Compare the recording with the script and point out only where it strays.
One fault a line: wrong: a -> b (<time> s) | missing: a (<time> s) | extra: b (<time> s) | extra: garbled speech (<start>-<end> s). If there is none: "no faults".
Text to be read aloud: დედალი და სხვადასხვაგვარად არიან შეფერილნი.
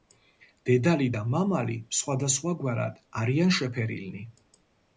extra: მამალი (1.3 s)